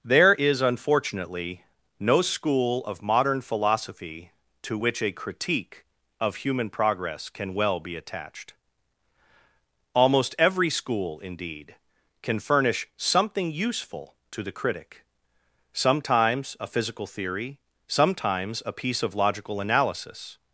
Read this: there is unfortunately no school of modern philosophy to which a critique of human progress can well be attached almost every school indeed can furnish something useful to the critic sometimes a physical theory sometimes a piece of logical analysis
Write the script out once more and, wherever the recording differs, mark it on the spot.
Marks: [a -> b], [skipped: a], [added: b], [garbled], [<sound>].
there is unfortunately no school of modern philosophy to which a critique of human progress can well be attached almost every school indeed can furnish something useful to the critic sometimes a physical theory sometimes a piece of logical analysis